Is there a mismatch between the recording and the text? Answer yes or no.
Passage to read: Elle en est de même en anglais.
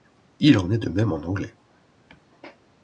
yes